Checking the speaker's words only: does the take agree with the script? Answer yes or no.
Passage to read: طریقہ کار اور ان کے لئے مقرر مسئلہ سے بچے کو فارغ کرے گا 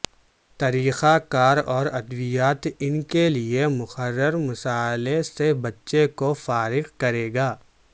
no